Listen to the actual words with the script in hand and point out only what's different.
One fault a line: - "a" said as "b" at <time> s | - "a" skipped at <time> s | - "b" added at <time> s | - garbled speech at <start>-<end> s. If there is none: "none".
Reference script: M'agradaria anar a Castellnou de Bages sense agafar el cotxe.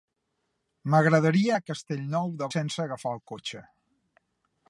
- "anar" skipped at 1.5 s
- "Bages" skipped at 2.5 s